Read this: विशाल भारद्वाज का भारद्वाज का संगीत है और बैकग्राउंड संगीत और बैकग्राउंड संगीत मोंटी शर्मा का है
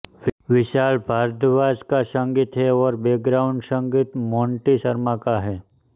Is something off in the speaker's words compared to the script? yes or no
yes